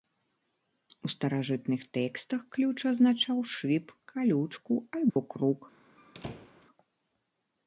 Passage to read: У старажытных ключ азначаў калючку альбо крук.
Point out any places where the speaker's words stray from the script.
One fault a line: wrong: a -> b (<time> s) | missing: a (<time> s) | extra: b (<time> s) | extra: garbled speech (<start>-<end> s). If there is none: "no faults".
extra: тэкстах (2.0 s)
extra: шып (3.5 s)